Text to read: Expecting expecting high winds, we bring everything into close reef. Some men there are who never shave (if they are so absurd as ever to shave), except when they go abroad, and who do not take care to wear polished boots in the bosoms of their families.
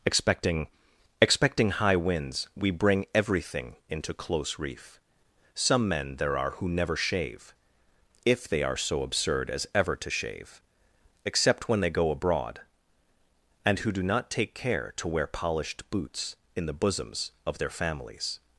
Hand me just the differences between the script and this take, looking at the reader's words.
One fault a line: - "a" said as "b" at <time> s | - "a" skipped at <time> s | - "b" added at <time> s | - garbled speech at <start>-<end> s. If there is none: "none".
none